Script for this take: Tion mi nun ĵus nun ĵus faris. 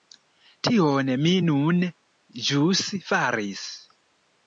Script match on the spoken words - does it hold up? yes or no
no